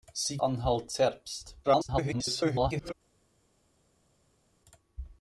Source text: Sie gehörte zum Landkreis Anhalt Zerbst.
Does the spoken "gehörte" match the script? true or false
false